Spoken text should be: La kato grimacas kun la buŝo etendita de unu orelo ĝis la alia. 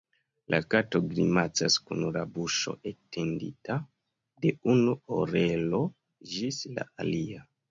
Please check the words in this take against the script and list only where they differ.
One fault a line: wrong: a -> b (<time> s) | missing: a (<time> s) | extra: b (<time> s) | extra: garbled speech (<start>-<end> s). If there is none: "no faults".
no faults